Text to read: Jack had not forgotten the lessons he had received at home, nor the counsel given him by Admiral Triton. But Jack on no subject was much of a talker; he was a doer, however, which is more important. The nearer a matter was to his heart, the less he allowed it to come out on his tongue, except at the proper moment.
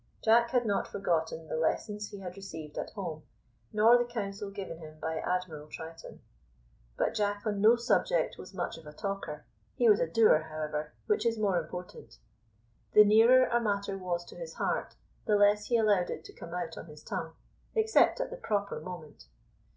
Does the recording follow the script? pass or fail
pass